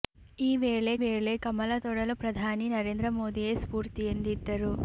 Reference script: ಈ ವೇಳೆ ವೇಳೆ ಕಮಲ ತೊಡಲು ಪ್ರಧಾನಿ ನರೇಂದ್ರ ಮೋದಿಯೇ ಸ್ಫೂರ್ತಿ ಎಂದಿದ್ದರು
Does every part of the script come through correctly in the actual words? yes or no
yes